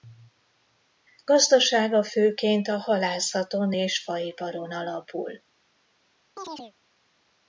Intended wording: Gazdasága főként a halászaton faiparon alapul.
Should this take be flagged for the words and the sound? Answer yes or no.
yes